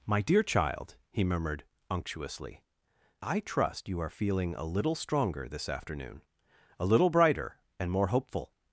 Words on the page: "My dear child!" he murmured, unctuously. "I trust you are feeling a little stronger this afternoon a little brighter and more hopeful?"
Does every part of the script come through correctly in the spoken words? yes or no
yes